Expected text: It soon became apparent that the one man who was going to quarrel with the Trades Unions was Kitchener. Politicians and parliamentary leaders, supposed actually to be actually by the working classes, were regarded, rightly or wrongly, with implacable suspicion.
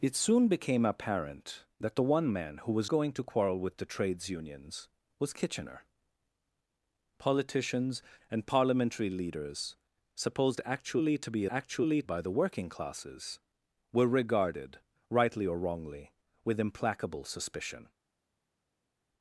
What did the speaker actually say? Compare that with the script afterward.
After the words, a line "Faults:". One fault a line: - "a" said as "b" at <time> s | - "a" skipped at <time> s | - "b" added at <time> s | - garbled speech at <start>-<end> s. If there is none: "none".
It soon became apparent that the one man who was going to quarrel with the Trades Unions was Kitchener. Politicians and parliamentary leaders, supposed actually to be actually by the working classes, were regarded, rightly or wrongly, with implacable suspicion.
Faults:
none